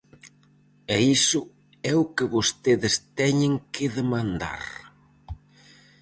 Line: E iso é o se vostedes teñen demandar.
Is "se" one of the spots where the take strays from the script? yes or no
yes